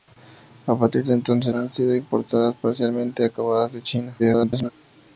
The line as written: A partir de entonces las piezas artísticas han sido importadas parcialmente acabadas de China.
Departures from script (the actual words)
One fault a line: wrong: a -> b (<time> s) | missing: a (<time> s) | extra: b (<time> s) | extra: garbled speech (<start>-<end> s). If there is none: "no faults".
missing: las piezas artísticas (1.5 s)
extra: garbled speech (4.2-4.7 s)